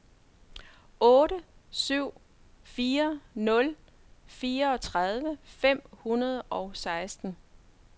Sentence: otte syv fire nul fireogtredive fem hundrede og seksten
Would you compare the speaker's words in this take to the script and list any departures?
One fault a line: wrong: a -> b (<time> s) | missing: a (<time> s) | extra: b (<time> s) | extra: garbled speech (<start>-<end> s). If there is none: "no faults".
no faults